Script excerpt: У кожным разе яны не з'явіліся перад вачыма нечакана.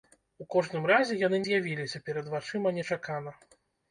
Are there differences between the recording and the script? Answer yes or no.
yes